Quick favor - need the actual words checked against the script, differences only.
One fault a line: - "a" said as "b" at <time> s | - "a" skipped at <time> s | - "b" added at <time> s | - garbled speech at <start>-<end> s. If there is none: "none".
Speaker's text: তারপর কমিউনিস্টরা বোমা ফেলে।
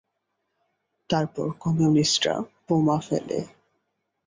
none